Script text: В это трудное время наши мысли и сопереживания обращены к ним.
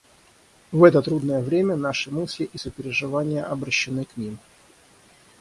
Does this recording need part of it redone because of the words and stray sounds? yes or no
no